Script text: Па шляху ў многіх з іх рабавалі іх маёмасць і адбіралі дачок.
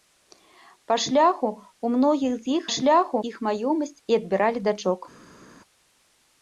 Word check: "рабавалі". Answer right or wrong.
wrong